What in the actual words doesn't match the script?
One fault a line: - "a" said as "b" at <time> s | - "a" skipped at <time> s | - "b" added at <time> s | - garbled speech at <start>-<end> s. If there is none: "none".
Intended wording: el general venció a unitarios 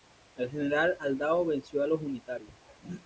- "aldao" added at 1.0 s
- "los" added at 1.9 s